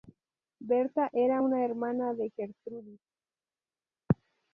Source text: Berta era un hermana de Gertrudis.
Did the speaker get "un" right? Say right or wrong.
wrong